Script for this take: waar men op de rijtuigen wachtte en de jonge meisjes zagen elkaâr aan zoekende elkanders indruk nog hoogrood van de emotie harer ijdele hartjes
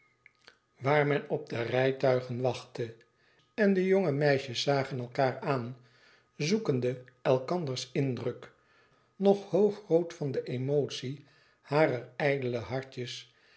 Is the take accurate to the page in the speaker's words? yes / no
yes